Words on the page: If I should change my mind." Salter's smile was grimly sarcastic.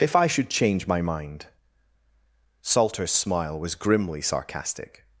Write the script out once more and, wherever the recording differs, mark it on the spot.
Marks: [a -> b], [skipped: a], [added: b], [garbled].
If I should change my mind." Salter's smile was grimly sarcastic.